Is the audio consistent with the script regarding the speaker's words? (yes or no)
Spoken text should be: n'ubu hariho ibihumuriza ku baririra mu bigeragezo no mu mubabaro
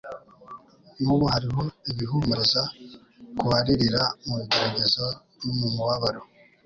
yes